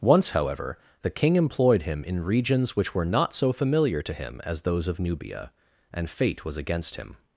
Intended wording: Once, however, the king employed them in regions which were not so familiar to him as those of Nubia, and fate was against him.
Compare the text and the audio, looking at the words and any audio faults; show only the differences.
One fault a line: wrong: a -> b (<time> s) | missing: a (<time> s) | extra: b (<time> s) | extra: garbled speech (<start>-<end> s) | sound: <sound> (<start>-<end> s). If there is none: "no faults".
wrong: them -> him (1.8 s)